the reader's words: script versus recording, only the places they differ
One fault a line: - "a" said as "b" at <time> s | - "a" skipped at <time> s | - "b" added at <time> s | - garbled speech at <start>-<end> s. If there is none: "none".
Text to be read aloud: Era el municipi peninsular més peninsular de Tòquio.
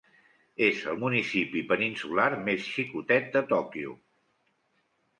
- "Era" said as "És" at 0.7 s
- "peninsular" said as "xicotet" at 2.8 s